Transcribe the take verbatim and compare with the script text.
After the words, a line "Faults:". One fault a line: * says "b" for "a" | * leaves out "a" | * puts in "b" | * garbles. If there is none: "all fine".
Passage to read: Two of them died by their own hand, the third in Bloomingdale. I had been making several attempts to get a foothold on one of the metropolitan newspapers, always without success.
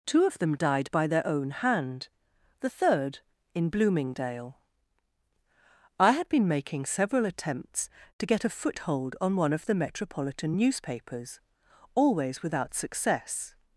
Two of them died by their own hand, the third in Bloomingdale. I had been making several attempts to get a foothold on one of the metropolitan newspapers, always without success.
Faults:
all fine